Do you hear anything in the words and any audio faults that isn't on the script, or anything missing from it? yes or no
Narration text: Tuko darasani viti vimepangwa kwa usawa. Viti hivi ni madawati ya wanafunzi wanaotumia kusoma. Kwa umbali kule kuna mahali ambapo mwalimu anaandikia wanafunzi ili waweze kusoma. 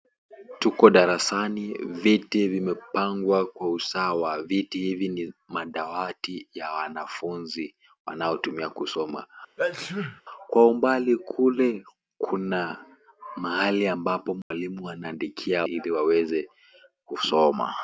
yes